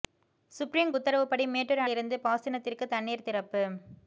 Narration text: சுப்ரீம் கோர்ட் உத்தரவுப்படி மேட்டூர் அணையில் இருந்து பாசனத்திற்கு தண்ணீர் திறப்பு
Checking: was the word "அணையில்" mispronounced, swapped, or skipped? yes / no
yes